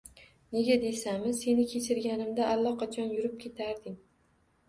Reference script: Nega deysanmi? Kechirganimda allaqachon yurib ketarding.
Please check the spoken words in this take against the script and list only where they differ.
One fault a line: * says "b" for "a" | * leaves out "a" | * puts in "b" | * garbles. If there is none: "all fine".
* puts in "Seni"